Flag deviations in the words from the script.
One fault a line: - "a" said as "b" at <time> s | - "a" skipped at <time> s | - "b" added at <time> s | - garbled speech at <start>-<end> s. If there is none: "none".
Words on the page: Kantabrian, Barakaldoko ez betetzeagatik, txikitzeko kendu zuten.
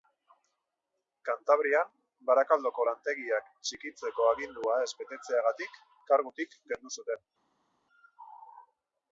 - "lantegiak txikitzeko agindua" added at 2.9 s
- "txikitzeko" said as "kargutik" at 6.1 s